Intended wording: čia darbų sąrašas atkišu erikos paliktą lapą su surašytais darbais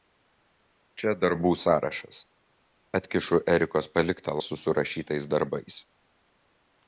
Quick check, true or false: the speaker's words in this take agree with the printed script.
false